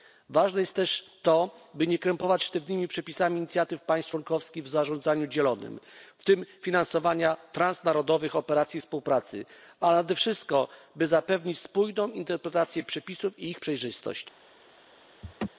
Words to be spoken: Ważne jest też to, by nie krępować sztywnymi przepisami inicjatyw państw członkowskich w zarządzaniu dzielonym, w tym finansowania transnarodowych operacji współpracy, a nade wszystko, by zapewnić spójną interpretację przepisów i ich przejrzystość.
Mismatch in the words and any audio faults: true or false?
true